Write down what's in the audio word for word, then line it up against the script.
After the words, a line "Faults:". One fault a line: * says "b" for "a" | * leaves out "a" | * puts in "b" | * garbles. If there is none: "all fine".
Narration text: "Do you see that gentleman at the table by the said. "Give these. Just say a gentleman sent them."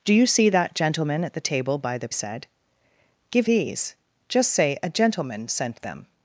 "Do you see that gentleman at the table by the said. "Give these. Just say a gentleman sent them."
Faults:
all fine